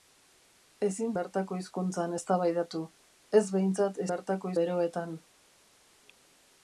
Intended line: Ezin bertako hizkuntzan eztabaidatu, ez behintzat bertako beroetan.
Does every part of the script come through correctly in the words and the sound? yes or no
yes